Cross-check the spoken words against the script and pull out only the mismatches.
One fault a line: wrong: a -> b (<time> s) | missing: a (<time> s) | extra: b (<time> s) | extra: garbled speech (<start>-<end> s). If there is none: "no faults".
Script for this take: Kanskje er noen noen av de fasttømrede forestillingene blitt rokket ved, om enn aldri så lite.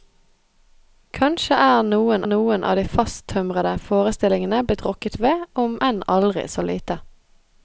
no faults